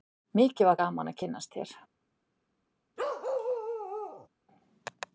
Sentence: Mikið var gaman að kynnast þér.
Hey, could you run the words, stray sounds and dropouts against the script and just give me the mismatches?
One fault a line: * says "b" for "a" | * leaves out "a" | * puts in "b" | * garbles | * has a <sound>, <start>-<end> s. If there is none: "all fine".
* has a bark, 3.0-4.3 s